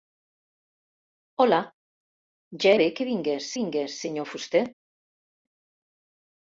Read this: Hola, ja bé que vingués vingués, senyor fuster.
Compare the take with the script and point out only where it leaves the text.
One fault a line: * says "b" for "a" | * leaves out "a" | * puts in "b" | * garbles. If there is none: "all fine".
all fine